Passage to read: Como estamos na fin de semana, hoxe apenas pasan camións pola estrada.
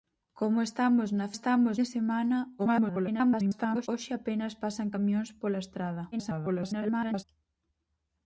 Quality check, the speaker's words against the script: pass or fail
fail